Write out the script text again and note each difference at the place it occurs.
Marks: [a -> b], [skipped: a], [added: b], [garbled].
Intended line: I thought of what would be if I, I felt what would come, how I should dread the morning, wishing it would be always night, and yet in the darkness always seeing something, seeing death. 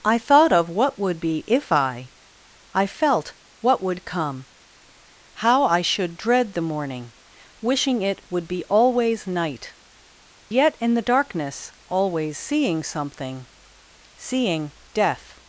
I thought of what would be if I, I felt what would come, how I should dread the morning, wishing it would be always night, [skipped: and] yet in the darkness always seeing something, seeing death.